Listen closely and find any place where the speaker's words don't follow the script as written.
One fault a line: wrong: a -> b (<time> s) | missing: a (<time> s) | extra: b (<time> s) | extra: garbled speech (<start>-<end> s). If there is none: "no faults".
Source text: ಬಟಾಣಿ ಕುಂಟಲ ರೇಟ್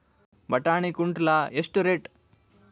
extra: ಎಷ್ಟು (1.5 s)